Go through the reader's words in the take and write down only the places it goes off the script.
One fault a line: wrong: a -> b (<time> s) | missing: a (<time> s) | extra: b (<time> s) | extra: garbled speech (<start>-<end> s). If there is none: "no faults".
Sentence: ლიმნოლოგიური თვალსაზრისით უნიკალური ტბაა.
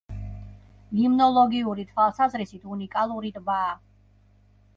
no faults